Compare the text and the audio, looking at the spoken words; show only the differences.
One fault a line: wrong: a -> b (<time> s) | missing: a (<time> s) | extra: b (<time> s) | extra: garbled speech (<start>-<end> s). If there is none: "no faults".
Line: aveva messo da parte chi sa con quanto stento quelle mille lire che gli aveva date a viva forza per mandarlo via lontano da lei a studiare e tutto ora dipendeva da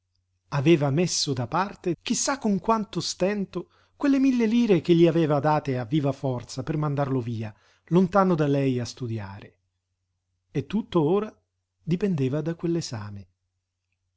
no faults